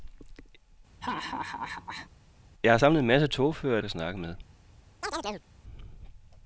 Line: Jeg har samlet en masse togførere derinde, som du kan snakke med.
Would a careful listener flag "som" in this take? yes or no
yes